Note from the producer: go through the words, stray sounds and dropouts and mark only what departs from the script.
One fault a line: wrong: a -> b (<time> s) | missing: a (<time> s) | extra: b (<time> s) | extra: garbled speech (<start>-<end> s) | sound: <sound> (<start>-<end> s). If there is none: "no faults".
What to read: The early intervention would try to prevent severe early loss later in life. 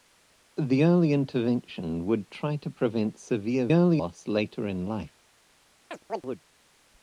sound: chirp (5.9-6.4 s)